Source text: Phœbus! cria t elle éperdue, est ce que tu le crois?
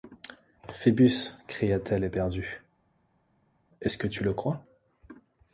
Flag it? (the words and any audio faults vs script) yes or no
no